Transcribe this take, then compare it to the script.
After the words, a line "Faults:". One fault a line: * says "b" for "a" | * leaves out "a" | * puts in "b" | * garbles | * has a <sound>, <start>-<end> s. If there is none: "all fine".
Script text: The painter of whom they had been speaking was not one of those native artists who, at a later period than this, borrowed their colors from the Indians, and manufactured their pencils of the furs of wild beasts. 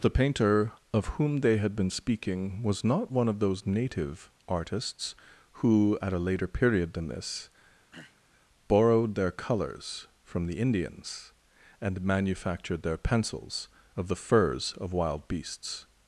The painter of whom they had been speaking was not one of those native artists who, at a later period than this, borrowed their colors from the Indians, and manufactured their pencils of the furs of wild beasts.
Faults:
* has a throat clearing, 7.9-8.2 s